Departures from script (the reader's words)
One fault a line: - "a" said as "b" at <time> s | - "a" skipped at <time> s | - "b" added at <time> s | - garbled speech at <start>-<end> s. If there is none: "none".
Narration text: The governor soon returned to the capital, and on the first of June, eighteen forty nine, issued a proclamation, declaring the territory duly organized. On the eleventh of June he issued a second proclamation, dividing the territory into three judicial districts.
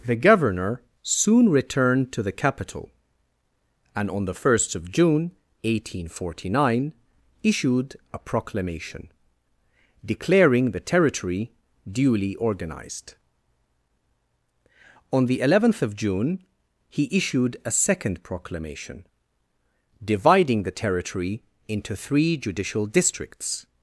none